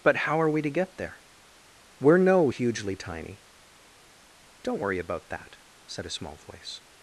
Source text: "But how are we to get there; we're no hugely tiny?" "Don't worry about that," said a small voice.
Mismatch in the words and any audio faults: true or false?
false